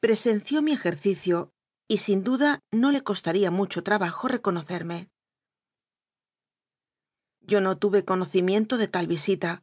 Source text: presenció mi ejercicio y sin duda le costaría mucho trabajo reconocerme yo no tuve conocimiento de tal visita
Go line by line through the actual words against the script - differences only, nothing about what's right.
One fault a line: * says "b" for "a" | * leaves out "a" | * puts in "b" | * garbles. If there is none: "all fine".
* puts in "no"